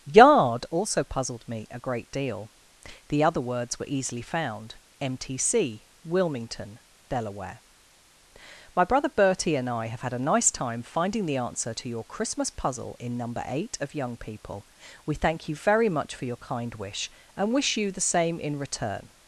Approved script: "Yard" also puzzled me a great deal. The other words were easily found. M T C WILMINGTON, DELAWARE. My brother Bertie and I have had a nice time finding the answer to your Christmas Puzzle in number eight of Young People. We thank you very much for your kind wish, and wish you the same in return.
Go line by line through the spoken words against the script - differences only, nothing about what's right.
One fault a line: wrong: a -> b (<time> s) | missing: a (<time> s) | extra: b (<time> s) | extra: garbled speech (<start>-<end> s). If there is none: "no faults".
no faults